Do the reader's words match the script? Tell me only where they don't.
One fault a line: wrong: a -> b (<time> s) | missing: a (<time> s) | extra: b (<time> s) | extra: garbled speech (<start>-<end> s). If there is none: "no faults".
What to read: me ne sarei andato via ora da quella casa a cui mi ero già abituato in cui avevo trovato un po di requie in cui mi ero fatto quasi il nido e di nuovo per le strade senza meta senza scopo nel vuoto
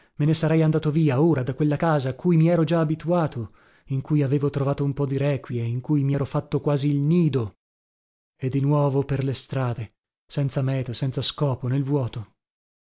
no faults